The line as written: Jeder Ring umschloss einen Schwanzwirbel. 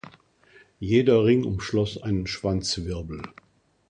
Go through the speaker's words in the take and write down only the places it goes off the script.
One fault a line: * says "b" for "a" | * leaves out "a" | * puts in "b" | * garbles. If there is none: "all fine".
all fine